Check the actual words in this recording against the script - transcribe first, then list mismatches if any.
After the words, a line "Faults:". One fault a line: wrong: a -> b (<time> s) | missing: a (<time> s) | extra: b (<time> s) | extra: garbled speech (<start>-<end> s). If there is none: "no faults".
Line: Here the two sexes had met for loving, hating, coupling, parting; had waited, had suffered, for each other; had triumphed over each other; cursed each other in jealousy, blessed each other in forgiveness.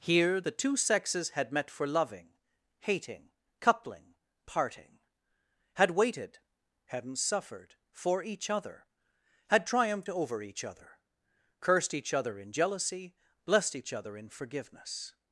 Here the two sexes had met for loving, hating, coupling, parting; had waited, hadn't suffered, for each other; had triumphed over each other; cursed each other in jealousy, blessed each other in forgiveness.
Faults:
wrong: had -> hadn't (6.9 s)